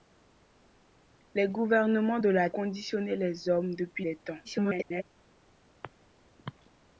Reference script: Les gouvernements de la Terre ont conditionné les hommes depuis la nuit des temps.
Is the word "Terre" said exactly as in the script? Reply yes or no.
no